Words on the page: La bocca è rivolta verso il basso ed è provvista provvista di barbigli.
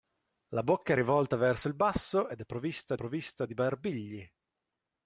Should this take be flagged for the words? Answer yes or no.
no